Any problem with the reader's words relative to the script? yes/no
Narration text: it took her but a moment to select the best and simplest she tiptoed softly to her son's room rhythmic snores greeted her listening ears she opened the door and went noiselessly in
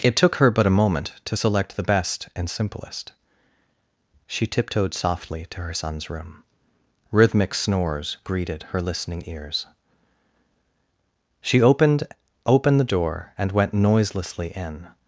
yes